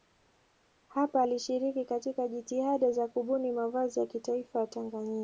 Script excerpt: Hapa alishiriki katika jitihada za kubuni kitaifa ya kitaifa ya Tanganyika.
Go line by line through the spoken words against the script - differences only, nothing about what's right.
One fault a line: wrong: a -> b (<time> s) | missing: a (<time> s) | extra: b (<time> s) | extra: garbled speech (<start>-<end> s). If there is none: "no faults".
wrong: kitaifa -> mavazi (3.5 s)